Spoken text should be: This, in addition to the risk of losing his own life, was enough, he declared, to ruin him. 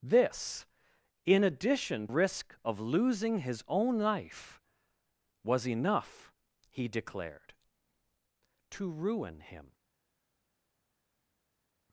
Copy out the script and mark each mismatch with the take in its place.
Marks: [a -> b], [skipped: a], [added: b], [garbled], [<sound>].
This, in addition [skipped: to the] risk of losing his own life, was enough, he declared, to ruin him.